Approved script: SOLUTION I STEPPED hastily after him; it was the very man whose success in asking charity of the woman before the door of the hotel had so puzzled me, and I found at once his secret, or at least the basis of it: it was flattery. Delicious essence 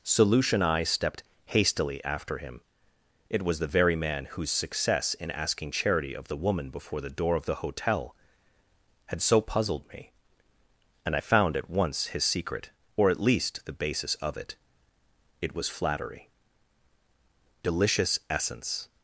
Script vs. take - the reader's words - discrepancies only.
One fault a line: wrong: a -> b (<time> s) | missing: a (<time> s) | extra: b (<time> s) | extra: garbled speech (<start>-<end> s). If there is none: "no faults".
no faults